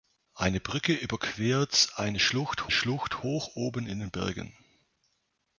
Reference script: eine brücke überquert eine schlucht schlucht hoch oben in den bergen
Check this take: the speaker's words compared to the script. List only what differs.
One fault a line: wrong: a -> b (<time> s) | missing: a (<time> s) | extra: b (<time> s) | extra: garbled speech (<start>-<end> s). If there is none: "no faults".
no faults